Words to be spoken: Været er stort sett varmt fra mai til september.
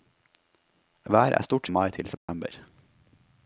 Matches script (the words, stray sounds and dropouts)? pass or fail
fail